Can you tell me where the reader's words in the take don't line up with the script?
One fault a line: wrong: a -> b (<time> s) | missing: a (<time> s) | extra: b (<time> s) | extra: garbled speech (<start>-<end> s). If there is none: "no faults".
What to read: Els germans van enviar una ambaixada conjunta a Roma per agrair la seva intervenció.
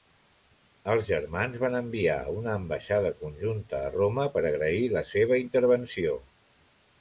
no faults